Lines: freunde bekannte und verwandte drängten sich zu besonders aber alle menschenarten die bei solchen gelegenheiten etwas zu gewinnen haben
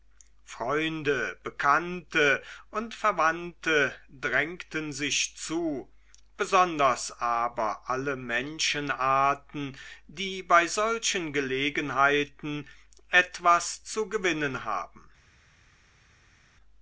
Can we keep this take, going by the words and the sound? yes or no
yes